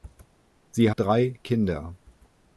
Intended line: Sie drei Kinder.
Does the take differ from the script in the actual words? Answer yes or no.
no